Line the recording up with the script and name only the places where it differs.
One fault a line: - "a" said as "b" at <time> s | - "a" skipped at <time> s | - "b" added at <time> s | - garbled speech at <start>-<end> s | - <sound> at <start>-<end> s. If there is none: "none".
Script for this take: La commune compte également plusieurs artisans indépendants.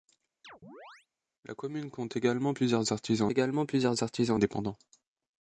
- chirp at 0.4-1.1 s
- "également plusieurs artisans" added at 3.3 s